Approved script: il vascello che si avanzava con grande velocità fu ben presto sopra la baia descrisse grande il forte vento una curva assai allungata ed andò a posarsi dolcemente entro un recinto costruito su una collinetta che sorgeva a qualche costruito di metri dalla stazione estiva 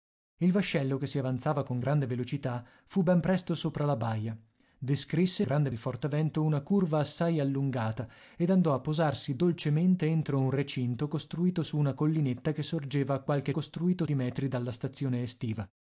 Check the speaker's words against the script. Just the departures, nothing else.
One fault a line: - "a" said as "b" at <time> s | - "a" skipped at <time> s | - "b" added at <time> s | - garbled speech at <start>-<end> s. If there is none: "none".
none